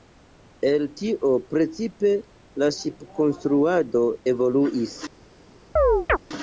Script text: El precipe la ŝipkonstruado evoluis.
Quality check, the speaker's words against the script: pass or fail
fail